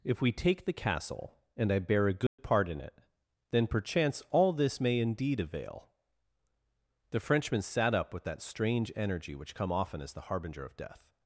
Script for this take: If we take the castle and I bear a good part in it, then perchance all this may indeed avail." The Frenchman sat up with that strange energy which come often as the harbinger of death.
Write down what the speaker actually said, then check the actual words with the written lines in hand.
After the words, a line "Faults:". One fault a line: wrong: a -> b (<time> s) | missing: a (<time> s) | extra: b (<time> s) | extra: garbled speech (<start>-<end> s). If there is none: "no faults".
If we take the castle and I bear a good part in it, then perchance all this may indeed avail." The Frenchman sat up with that strange energy which come often as the harbinger of death.
Faults:
no faults